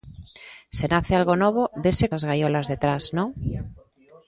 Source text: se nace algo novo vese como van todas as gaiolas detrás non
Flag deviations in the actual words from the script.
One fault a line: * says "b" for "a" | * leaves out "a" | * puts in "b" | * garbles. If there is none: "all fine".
* leaves out "como van todas"